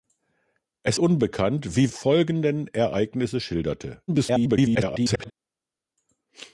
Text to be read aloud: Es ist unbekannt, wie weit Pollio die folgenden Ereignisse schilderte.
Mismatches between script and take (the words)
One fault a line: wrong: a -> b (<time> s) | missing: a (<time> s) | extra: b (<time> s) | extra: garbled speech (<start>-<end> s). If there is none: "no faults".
missing: ist (1.0 s)
missing: weit Pollio die (1.9 s)
extra: garbled speech (4.1-5.3 s)